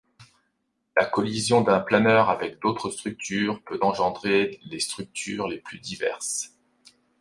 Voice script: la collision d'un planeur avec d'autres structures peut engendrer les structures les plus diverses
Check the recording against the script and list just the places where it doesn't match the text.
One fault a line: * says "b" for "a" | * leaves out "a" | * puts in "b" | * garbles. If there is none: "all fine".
all fine